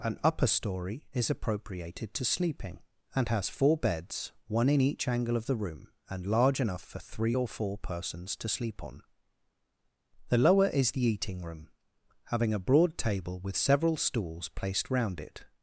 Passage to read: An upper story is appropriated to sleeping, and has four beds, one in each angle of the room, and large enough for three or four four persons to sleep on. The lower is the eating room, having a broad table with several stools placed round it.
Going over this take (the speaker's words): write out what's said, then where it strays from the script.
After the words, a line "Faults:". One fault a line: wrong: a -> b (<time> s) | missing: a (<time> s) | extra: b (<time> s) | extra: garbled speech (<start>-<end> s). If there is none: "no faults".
An upper story is appropriated to sleeping, and has four beds, one in each angle of the room, and large enough for three or four persons to sleep on. The lower is the eating room, having a broad table with several stools placed round it.
Faults:
missing: four (7.8 s)